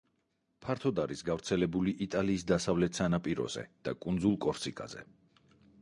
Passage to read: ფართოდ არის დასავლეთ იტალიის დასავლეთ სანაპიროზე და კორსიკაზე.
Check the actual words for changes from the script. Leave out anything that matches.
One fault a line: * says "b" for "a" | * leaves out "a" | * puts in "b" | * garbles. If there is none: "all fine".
* says "გავრცელებული" for "დასავლეთ"
* puts in "კუნძულ"